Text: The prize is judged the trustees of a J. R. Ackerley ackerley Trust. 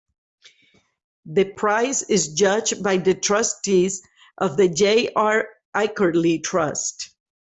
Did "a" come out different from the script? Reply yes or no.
yes